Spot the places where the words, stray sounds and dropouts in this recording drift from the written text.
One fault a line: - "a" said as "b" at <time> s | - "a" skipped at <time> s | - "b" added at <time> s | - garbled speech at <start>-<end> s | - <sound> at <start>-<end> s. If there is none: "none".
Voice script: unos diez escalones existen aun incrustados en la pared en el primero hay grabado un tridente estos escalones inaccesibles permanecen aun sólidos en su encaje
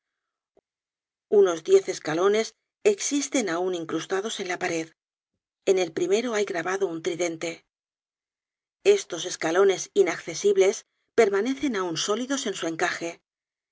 none